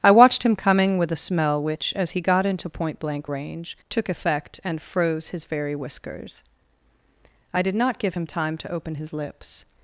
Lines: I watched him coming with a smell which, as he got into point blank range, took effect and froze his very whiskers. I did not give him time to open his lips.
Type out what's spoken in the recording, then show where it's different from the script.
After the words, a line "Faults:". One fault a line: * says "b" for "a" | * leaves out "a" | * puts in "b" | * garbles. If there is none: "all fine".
I watched him coming with a smell which, as he got into point blank range, took effect and froze his very whiskers. I did not give him time to open his lips.
Faults:
all fine